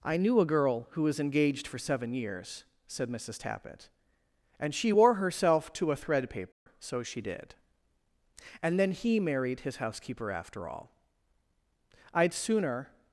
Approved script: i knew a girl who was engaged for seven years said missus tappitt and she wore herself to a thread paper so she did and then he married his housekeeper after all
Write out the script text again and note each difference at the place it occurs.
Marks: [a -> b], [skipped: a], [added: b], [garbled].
i knew a girl who was engaged for seven years said missus tappitt and she wore herself to a thread paper so she did and then he married his housekeeper after all [added: i'd sooner]